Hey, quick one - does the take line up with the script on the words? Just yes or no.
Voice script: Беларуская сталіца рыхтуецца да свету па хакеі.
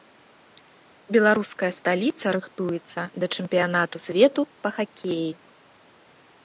no